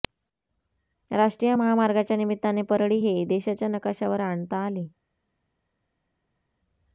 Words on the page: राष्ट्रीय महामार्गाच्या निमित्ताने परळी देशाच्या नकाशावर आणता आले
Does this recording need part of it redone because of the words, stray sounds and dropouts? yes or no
yes